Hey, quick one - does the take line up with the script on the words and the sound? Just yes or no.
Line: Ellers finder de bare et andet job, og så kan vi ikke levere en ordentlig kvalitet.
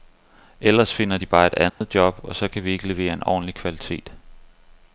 no